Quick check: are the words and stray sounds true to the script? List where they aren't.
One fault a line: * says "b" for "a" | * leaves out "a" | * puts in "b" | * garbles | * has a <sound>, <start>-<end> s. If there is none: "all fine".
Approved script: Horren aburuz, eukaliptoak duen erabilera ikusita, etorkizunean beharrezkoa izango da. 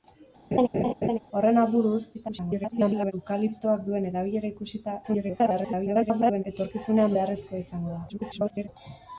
* has a laugh, 0.5-1.2 s
* garbles
* garbles
* garbles